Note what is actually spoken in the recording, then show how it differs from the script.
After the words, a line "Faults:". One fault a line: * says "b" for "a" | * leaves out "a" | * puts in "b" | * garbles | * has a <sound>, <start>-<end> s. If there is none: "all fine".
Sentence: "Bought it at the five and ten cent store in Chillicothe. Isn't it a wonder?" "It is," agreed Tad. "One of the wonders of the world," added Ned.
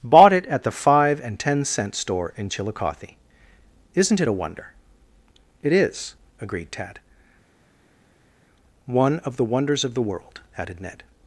"Bought it at the five and ten cent store in Chillicothe. Isn't it a wonder?" "It is," agreed Tad. "One of the wonders of the world," added Ned.
Faults:
all fine